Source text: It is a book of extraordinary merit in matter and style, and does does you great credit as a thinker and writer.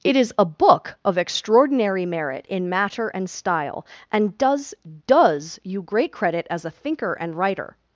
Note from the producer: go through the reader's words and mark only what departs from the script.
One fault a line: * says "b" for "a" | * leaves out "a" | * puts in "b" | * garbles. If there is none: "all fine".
all fine